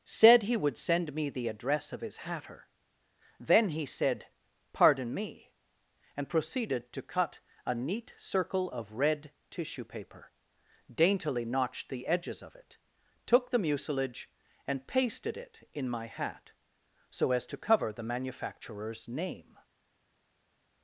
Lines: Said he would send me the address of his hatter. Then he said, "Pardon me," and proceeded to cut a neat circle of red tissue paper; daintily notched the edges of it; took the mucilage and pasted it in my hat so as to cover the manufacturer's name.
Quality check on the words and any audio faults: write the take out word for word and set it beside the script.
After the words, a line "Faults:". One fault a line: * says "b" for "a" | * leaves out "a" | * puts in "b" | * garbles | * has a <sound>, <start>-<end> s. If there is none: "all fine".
Said he would send me the address of his hatter. Then he said, "Pardon me," and proceeded to cut a neat circle of red tissue paper; daintily notched the edges of it; took the mucilage and pasted it in my hat so as to cover the manufacturer's name.
Faults:
all fine